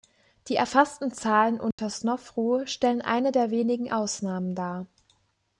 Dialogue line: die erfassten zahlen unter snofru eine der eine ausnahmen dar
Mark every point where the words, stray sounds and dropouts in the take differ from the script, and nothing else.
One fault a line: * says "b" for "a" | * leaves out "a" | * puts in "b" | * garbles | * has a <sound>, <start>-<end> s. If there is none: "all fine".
* has a dropout, 1.7-1.8 s
* puts in "stellen"
* says "wenigen" for "eine"